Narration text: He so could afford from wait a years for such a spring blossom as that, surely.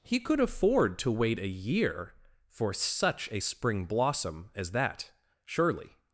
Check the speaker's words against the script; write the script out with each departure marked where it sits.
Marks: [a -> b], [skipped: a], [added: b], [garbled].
He [skipped: so] could afford [from -> to] wait a [years -> year] for such a spring blossom as that, surely.